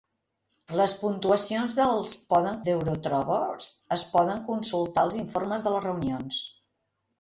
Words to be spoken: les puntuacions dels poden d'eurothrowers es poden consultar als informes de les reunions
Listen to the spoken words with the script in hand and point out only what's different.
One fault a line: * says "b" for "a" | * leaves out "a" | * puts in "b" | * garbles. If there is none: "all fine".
all fine